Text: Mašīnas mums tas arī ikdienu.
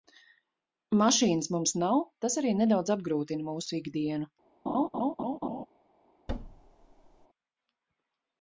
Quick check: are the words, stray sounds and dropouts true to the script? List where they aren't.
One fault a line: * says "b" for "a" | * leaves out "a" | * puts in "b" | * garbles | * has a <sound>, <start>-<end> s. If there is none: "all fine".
* puts in "nav"
* puts in "nedaudz apgrūtina mūsu"
* has a laugh, 4.7-5.7 s
* has a thud, 6.3-7.3 s